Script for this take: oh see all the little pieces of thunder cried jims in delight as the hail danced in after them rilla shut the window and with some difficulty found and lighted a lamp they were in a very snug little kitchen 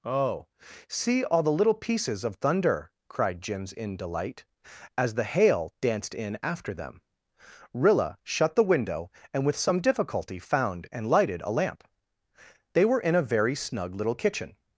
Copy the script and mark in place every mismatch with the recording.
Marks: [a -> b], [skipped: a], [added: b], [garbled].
oh see all the little pieces of thunder cried jims in delight as the hail danced in after them rilla shut the window and with some difficulty found and lighted a lamp they were in a very snug little kitchen